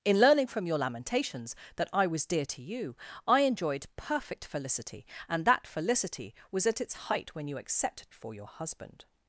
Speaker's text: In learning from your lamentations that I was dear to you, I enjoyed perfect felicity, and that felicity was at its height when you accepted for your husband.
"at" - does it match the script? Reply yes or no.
yes